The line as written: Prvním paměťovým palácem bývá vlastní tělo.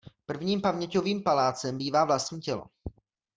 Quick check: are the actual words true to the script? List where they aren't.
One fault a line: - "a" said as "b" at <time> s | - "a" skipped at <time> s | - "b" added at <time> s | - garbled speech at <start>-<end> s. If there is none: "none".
none